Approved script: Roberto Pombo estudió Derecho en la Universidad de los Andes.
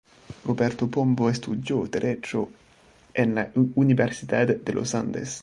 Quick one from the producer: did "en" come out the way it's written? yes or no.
yes